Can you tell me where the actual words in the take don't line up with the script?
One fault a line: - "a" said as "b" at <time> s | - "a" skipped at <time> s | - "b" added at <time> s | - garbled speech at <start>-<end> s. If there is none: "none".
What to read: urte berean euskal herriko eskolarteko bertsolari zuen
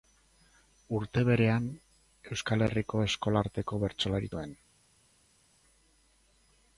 none